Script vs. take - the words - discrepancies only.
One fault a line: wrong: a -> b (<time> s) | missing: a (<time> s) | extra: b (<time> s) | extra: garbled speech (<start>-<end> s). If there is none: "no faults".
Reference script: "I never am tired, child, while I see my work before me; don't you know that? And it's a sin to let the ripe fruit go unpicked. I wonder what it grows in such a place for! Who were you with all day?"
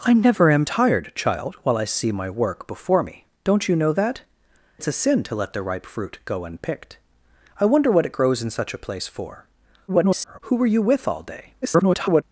missing: And (4.2 s)
extra: garbled speech (9.9-10.4 s)
extra: garbled speech (11.6-12.2 s)